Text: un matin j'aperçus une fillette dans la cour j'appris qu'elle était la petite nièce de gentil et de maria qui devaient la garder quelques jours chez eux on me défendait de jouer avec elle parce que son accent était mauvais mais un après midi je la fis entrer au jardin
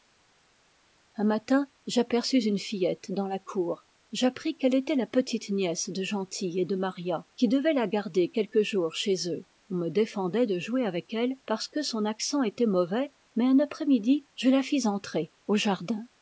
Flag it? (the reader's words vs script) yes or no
no